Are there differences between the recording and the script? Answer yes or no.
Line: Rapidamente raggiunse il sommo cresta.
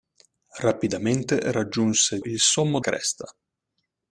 no